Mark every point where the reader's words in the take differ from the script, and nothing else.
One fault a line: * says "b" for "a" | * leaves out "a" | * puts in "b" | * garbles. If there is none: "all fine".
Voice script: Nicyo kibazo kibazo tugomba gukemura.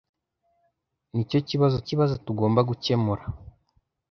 all fine